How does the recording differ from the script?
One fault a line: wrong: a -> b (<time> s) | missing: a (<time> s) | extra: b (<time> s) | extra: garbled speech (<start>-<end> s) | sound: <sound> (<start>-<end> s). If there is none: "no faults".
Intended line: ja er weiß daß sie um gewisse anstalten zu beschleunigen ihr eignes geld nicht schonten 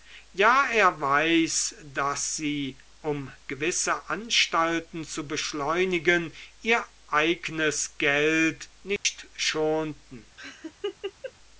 sound: dropout (9.0-9.0 s)
sound: laugh (10.4-11.3 s)